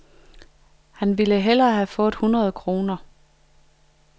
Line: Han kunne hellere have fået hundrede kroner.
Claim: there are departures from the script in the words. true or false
true